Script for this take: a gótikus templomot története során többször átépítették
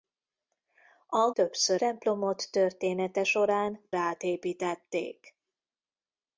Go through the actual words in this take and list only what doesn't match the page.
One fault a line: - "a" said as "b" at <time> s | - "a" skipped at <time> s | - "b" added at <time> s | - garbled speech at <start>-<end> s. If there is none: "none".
- "gótikus" said as "többször" at 1.3 s
- "többször" skipped at 3.9 s